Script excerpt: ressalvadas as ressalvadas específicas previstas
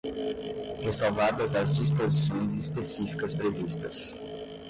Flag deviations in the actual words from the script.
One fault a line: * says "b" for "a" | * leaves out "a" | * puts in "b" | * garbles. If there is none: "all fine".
* says "disposições" for "ressalvadas"